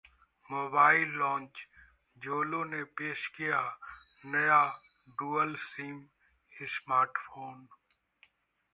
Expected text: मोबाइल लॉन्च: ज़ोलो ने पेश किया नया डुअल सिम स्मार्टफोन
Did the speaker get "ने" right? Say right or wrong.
right